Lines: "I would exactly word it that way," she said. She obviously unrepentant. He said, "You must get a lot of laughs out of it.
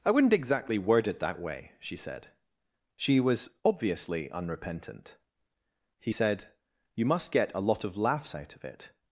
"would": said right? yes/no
no